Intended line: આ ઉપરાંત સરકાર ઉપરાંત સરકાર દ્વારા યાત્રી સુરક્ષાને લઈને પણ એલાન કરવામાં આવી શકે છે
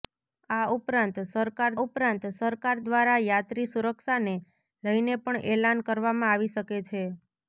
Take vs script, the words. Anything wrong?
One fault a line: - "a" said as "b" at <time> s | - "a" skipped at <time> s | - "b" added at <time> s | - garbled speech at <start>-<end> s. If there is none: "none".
none